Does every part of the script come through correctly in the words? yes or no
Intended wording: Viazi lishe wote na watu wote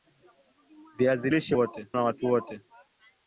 yes